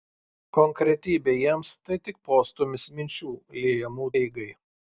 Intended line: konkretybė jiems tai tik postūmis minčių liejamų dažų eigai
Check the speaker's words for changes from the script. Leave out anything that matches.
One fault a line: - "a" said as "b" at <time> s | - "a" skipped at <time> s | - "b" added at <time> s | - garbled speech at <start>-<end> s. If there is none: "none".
- "dažų" skipped at 4.1 s